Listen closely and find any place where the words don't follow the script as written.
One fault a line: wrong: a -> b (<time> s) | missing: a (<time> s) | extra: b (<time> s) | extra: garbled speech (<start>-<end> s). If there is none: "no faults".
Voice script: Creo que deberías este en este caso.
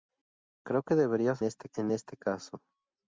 no faults